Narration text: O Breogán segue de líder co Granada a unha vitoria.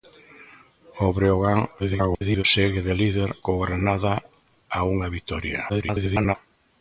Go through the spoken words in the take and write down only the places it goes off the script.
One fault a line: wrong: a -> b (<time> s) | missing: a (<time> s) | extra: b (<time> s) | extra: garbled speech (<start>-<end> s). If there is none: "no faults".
extra: garbled speech (1.8-2.4 s)
extra: garbled speech (5.7-6.4 s)